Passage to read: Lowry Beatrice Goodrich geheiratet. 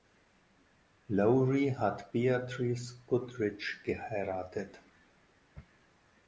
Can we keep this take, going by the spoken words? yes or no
no